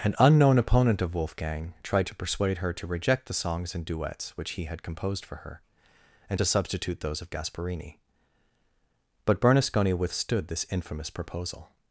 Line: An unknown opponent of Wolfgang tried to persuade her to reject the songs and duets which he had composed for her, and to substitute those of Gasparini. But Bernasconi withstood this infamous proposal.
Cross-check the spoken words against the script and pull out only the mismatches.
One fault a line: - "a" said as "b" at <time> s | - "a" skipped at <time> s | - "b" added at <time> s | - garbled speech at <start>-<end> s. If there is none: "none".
none